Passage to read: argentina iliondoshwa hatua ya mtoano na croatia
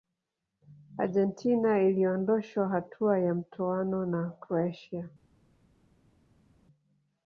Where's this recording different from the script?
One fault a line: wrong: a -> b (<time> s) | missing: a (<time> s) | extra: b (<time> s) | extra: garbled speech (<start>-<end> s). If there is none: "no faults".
no faults